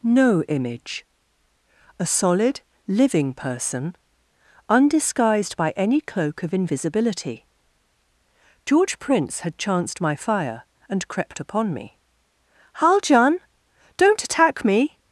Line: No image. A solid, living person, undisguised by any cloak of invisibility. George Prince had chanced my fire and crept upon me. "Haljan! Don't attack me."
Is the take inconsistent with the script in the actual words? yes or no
no